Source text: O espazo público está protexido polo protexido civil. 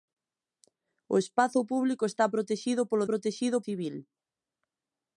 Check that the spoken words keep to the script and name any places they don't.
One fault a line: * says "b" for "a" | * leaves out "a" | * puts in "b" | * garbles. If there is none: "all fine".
all fine